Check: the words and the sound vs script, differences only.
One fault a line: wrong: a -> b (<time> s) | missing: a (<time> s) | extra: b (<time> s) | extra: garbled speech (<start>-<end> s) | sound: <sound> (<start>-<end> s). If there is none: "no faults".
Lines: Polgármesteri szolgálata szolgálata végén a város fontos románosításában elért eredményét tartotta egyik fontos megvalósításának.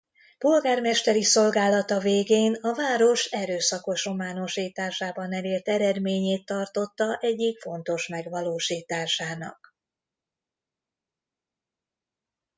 missing: szolgálata (2.0 s)
wrong: fontos -> erőszakos (3.2 s)